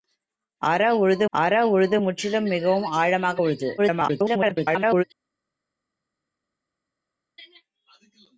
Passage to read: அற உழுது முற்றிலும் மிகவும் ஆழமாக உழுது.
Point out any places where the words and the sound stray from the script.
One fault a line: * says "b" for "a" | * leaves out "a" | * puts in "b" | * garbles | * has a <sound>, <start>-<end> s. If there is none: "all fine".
* puts in "அற உழுது"
* garbles